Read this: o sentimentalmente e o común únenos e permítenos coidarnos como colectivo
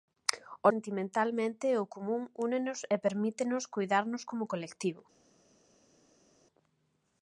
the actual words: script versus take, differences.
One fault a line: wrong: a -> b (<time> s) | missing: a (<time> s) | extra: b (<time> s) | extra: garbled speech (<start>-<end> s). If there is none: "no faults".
no faults